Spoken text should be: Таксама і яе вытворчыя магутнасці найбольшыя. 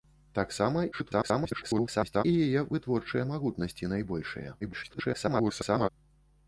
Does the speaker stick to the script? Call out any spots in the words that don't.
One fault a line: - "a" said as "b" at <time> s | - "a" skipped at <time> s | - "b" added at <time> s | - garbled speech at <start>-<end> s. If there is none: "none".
- garbled speech at 0.9-2.2 s
- garbled speech at 4.6-5.9 s